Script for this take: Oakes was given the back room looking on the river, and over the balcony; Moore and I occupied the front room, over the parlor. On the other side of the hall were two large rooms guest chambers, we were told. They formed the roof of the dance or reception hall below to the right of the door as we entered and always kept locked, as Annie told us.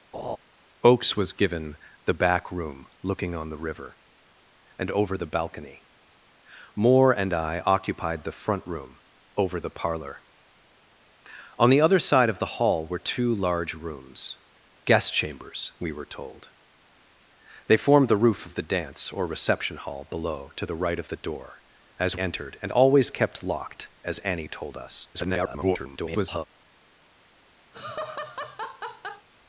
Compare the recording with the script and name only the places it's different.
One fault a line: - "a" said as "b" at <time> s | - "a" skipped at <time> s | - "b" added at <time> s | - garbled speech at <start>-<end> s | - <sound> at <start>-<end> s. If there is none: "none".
- laugh at 0.1-0.4 s
- "we" skipped at 22.2 s
- garbled speech at 25.1-26.5 s
- laugh at 27.7-29.3 s